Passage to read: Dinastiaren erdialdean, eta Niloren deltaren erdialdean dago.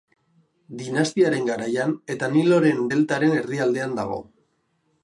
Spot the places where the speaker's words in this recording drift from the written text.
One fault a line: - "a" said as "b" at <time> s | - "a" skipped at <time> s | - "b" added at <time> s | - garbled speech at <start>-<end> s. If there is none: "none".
- "erdialdean" said as "garaian" at 1.5 s